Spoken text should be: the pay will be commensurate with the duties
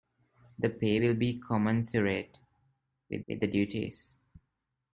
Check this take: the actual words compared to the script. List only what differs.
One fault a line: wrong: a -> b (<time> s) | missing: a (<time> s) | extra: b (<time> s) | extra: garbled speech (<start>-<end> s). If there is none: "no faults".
extra: with (3.3 s)